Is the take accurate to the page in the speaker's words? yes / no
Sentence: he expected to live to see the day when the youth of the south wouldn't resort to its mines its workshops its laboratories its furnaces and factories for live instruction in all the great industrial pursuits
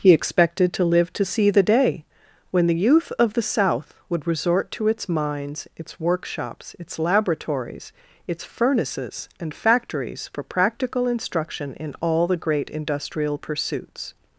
no